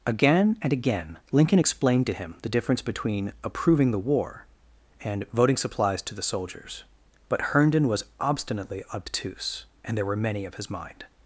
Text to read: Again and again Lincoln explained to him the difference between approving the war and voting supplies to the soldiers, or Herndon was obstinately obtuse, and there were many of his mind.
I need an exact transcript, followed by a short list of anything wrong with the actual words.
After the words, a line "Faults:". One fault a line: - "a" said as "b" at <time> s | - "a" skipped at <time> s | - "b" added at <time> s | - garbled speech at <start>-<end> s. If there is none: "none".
Again and again Lincoln explained to him the difference between approving the war and voting supplies to the soldiers, but Herndon was obstinately obtuse, and there were many of his mind.
Faults:
- "or" said as "but" at 7.3 s